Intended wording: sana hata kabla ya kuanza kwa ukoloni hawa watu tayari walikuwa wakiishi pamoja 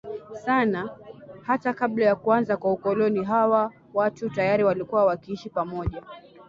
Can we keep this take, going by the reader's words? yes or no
yes